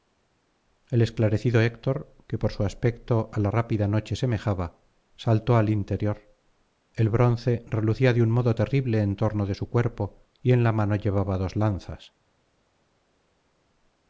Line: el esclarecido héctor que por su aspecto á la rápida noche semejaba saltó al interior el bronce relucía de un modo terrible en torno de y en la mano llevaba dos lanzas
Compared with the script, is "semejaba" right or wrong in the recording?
right